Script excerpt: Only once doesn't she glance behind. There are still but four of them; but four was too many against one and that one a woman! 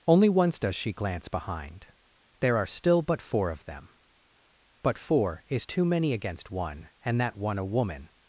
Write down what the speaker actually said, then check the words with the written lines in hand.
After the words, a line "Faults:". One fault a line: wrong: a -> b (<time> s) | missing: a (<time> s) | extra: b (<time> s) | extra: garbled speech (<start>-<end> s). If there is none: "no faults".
Only once does she glance behind. There are still but four of them; but four is too many against one and that one a woman!
Faults:
wrong: doesn't -> does (0.6 s)
wrong: was -> is (5.5 s)